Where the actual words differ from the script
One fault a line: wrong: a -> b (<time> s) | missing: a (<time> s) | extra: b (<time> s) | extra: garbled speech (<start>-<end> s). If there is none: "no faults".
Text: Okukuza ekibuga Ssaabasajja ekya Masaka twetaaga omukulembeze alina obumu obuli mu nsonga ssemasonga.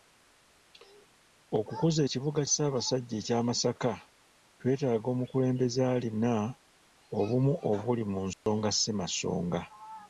no faults